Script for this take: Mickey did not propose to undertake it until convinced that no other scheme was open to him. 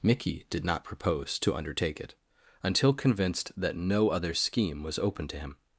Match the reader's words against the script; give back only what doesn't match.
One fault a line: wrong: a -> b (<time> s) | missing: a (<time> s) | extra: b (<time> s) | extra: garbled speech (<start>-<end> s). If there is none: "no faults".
no faults